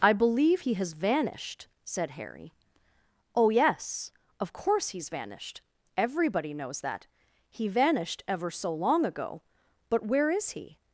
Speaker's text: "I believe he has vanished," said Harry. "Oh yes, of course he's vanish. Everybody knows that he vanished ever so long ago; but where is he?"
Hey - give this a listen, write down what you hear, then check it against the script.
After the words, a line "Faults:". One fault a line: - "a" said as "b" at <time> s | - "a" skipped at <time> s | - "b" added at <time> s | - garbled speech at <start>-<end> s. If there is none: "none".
"I believe he has vanished," said Harry. "Oh yes, of course he's vanished. Everybody knows that he vanished ever so long ago; but where is he?"
Faults:
- "vanish" said as "vanished" at 5.1 s